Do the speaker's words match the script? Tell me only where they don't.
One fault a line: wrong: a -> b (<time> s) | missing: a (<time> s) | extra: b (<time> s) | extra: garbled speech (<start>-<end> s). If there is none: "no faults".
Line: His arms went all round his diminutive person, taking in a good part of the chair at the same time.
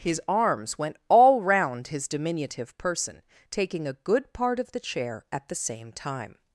missing: in (3.9 s)